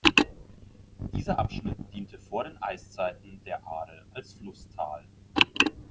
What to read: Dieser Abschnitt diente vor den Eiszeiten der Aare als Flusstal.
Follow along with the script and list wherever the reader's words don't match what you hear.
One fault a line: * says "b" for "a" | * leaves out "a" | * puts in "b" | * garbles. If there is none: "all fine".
all fine